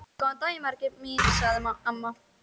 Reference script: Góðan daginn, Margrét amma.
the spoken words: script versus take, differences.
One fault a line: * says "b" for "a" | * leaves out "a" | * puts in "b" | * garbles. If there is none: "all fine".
* puts in "mín sagði"